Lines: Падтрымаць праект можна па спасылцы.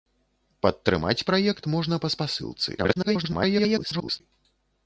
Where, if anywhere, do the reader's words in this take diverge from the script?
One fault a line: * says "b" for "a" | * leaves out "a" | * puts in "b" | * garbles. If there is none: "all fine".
* garbles